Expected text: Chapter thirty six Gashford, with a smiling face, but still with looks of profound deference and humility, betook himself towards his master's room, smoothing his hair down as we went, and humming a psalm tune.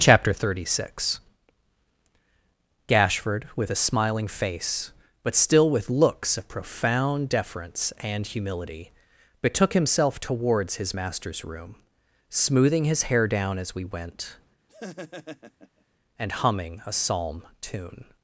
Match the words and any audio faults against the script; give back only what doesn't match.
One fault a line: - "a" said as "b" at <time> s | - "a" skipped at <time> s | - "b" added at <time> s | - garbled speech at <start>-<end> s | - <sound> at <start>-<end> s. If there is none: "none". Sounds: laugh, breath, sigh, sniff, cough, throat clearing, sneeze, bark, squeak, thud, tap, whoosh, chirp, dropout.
- laugh at 14.7-15.8 s